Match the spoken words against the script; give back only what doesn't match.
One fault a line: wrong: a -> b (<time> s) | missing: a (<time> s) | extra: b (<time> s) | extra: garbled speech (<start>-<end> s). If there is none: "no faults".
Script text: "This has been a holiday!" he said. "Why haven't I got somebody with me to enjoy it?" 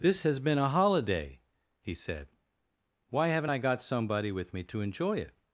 no faults